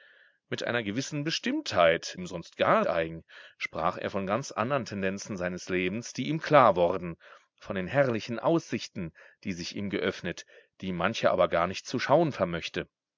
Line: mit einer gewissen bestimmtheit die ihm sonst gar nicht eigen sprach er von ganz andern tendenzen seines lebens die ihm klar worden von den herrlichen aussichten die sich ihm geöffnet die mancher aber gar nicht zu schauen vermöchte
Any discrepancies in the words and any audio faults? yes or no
yes